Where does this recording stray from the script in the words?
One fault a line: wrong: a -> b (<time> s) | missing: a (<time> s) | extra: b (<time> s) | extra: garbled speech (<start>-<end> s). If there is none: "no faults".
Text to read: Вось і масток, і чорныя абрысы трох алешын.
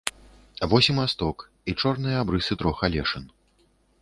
no faults